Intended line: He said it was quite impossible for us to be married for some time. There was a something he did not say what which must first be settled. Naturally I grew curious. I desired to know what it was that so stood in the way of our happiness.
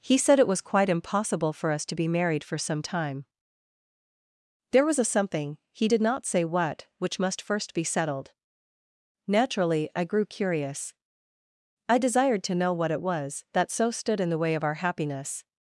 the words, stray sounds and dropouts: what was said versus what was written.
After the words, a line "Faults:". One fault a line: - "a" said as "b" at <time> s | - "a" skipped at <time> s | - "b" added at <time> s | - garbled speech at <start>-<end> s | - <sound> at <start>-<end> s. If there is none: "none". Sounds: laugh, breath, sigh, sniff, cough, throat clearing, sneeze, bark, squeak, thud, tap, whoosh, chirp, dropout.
He said it was quite impossible for us to be married for some time. There was a something he did not say what which must first be settled. Naturally I grew curious. I desired to know what it was that so stood in the way of our happiness.
Faults:
none